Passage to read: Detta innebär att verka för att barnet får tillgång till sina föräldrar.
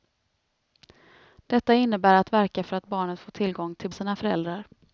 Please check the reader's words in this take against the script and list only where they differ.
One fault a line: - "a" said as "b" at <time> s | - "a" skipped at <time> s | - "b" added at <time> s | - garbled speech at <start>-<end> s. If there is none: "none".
none